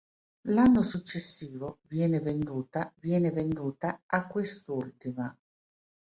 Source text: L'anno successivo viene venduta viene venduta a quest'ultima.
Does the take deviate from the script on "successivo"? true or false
false